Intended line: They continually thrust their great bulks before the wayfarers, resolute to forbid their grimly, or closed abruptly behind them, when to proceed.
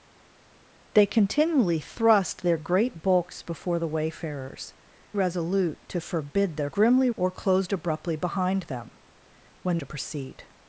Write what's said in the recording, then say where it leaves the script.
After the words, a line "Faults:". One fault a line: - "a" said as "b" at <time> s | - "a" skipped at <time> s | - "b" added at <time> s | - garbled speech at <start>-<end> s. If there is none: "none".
They continually thrust their great bulks before the wayfarers, resolute to forbid their grimly, or closed abruptly behind them, when to proceed.
Faults:
none